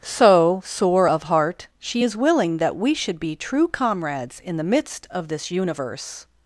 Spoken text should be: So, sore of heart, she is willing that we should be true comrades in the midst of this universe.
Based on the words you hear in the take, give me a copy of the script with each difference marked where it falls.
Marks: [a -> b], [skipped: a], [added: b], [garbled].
So, sore of heart, she is willing that we should be true comrades in the midst of this universe.